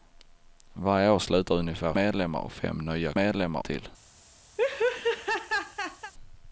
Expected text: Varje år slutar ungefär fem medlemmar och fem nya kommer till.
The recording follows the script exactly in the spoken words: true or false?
false